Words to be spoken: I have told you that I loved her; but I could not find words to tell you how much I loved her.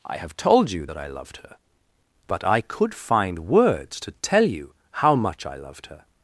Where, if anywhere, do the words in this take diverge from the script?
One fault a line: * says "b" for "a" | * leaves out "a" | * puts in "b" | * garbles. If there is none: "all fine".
* leaves out "not"